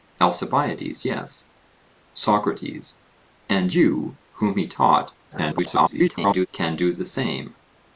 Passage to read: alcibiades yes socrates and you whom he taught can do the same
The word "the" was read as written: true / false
true